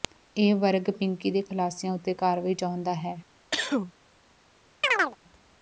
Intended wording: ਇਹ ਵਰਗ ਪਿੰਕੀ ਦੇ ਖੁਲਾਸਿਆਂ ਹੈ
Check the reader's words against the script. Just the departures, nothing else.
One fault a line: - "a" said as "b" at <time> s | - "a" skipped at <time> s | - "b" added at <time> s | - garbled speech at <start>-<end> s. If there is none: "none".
- "ਉੱਤੇ ਕਾਰਵਾਈ ਚਾਹੁੰਦਾ" added at 1.9 s